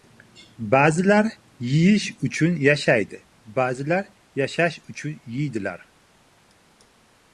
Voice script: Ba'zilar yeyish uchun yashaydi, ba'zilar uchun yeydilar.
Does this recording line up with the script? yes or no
no